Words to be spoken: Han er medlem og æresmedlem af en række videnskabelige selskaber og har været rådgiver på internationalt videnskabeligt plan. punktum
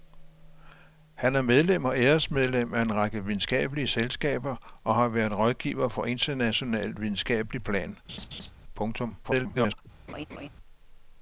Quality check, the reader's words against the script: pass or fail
fail